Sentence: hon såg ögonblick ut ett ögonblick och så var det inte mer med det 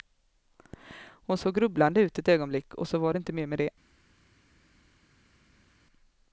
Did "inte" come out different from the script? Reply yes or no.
no